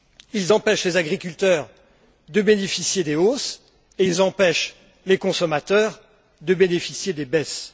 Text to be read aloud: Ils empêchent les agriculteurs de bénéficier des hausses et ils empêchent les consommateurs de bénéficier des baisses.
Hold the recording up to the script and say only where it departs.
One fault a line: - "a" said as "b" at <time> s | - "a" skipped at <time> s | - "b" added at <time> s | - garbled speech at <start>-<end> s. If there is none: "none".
none